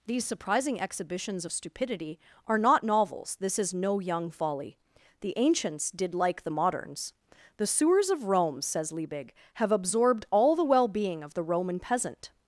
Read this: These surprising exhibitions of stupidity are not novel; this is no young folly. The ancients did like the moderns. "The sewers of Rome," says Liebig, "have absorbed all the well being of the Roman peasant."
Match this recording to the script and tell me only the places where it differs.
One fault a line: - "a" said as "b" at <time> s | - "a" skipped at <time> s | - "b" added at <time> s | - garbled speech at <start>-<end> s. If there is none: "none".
- "novel" said as "novels" at 2.8 s